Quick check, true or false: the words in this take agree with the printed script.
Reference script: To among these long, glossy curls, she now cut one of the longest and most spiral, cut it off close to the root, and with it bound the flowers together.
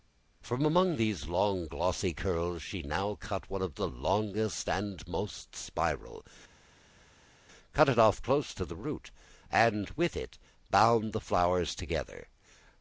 false